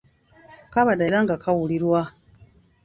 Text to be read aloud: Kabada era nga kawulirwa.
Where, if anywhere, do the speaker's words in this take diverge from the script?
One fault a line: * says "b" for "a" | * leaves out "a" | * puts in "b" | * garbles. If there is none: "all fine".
all fine